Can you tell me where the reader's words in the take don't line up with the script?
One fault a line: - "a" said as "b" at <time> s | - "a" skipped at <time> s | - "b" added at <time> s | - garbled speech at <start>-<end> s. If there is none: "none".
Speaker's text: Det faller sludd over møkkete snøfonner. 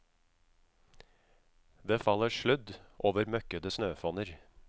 none